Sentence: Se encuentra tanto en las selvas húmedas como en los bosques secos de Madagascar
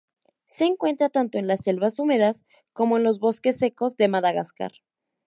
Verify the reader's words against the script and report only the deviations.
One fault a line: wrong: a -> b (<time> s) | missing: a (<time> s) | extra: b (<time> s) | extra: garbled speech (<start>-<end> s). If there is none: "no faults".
no faults